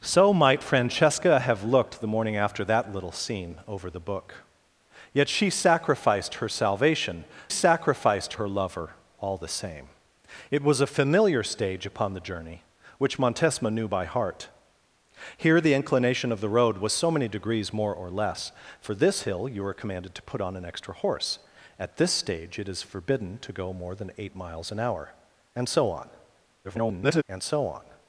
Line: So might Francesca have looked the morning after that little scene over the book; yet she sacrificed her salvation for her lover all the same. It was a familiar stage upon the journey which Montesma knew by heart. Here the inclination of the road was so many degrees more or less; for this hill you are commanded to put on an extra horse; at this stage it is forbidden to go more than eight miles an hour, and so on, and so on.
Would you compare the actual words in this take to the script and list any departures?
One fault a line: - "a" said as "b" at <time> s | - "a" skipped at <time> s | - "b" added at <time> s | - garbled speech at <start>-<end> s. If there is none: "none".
- "for" said as "sacrificed" at 7.5 s
- garbled speech at 26.6-27.2 s